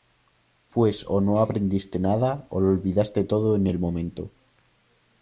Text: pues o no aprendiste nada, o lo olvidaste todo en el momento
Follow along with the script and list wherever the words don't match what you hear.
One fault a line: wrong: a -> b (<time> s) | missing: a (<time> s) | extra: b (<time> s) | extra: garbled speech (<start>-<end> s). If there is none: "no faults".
no faults